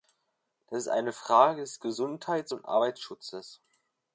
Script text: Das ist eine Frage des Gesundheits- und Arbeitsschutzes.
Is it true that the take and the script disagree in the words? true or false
false